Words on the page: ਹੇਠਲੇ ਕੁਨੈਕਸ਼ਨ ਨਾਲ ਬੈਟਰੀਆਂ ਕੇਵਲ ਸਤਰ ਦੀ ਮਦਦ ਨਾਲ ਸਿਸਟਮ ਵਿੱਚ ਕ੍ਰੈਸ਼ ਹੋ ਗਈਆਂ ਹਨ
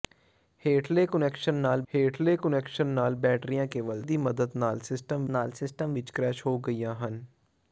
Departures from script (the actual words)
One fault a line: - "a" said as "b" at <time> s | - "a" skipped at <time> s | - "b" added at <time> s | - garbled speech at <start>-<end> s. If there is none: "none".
- "ਹੇਠਲੇ ਕੁਨੈਕਸ਼ਨ ਨਾਲ" added at 1.9 s
- "ਸਤਰ" skipped at 4.0 s
- "ਨਾਲ ਸਿਸਟਮ" added at 5.3 s